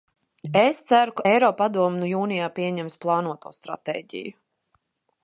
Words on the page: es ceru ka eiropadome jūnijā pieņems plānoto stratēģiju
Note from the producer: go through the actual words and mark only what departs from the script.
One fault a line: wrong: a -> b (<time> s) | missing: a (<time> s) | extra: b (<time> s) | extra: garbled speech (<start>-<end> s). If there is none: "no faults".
no faults